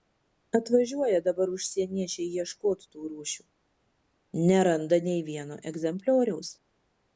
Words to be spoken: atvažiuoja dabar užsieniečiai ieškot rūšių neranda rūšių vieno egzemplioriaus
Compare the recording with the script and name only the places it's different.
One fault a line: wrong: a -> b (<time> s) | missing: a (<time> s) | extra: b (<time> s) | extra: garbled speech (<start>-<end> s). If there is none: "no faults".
extra: tų (3.0 s)
wrong: rūšių -> nei (5.1 s)